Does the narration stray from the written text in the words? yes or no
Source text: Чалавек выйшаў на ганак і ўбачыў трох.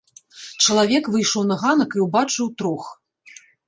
no